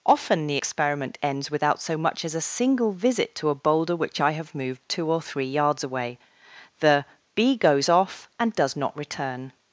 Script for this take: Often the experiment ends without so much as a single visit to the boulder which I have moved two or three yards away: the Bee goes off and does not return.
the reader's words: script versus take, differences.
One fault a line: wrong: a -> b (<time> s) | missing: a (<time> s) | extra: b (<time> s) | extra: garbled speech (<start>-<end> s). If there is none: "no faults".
wrong: the -> a (3.5 s)